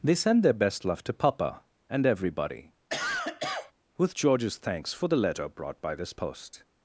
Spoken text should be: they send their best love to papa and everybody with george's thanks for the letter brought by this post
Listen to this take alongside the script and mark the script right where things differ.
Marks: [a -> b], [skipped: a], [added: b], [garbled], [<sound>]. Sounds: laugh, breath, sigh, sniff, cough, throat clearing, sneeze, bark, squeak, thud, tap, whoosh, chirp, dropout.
they send their best love to papa and everybody [cough] with george's thanks for the letter brought by this post